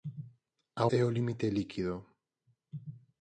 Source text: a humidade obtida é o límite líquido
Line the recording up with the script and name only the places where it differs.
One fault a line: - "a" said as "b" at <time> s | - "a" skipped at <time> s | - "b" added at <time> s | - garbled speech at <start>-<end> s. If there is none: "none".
- "humidade obtida" skipped at 0.8 s